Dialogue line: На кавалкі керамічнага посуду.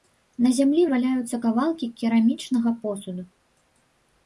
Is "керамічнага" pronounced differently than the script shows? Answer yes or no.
no